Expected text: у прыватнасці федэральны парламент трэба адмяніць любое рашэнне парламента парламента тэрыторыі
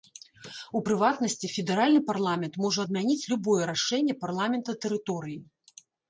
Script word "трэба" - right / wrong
wrong